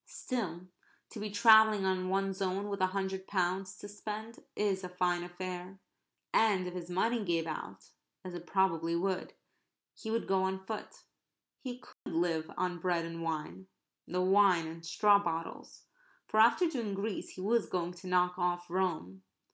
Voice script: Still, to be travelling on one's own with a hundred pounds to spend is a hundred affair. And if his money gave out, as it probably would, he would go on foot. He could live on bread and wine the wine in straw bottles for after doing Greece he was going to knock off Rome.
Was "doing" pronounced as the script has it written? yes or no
yes